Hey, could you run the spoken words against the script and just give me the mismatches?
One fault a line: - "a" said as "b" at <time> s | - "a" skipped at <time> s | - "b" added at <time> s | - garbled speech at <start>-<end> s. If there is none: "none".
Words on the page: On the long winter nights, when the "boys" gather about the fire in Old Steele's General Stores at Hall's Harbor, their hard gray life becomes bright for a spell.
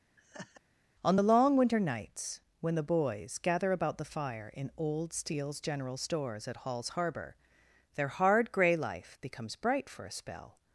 none